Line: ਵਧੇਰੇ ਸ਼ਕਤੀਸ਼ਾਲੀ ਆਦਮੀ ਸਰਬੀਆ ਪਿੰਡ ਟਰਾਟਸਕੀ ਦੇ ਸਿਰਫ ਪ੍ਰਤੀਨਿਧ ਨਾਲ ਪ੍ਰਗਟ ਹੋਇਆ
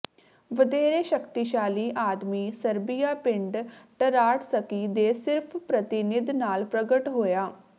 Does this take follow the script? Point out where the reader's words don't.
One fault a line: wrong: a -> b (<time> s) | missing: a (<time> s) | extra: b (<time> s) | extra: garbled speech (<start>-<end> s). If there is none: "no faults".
no faults